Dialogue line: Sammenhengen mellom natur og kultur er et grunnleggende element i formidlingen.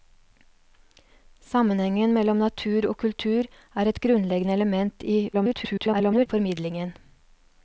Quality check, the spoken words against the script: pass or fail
fail